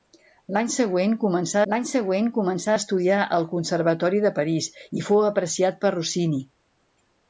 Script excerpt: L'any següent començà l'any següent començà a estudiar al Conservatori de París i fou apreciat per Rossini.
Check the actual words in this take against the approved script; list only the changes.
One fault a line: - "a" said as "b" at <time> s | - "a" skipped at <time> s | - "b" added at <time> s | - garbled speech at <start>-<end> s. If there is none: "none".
none